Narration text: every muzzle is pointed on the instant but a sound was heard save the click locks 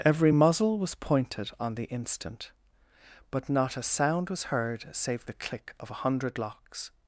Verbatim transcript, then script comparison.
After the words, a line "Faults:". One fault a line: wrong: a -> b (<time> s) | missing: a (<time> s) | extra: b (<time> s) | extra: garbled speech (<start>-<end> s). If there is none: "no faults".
every muzzle was pointed on the instant but not a sound was heard save the click of a hundred locks
Faults:
wrong: is -> was (0.8 s)
extra: not (3.5 s)
extra: of a hundred (5.8 s)